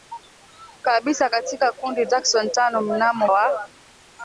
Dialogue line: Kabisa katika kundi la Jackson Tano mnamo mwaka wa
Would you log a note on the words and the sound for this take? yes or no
yes